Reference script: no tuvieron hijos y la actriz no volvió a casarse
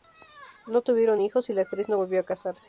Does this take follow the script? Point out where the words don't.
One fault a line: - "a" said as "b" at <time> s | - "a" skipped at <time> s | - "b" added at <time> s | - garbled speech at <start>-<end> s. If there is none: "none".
none